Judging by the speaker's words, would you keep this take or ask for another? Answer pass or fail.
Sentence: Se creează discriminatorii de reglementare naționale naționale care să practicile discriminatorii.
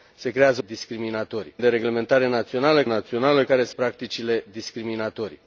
pass